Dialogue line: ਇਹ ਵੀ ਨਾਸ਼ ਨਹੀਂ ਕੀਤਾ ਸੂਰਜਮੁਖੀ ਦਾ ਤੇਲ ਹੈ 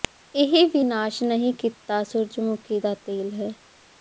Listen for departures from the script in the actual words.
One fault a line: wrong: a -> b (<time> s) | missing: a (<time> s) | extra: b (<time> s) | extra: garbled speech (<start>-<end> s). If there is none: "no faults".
no faults